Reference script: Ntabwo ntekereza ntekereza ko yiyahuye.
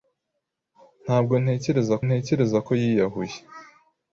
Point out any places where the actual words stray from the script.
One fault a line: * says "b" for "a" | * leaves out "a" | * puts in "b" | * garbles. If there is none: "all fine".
all fine